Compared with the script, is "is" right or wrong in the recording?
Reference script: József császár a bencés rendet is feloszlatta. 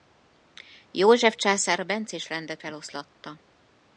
wrong